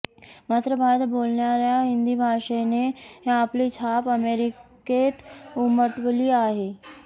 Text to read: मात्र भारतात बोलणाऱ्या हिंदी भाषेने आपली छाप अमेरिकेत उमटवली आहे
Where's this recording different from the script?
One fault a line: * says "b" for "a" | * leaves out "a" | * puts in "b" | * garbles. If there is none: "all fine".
all fine